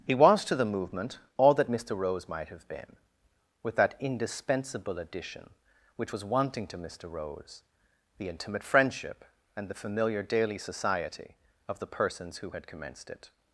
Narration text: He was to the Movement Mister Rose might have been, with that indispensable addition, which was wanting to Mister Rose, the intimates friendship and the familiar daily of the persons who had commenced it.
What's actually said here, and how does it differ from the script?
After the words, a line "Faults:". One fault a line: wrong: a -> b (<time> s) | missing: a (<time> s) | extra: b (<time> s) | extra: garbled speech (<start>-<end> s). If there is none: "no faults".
He was to the Movement all that Mister Rose might have been, with that indispensable addition, which was wanting to Mister Rose, the intimate friendship and the familiar daily society of the persons who had commenced it.
Faults:
extra: all that (1.4 s)
wrong: intimates -> intimate (8.3 s)
extra: society (10.6 s)